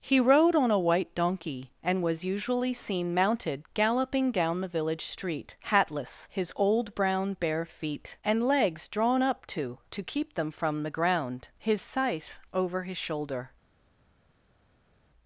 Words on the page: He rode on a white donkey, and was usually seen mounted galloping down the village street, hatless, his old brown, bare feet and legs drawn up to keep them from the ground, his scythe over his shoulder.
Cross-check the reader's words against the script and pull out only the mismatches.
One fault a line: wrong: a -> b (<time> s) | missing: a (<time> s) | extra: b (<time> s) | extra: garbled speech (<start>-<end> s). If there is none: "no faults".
extra: to (9.9 s)